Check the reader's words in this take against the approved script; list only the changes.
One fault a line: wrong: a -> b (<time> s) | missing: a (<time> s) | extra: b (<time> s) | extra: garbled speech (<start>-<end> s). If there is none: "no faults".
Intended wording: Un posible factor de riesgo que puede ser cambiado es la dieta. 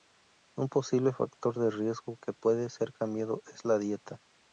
no faults